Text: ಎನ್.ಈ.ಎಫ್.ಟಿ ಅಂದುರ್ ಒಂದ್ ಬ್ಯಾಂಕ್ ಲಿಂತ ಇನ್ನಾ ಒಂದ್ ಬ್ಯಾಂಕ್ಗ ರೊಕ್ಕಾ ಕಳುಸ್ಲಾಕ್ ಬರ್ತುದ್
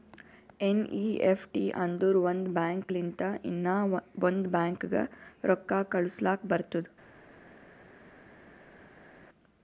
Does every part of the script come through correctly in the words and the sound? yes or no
yes